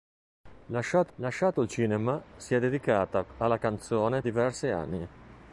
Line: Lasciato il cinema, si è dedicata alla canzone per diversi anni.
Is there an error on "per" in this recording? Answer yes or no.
yes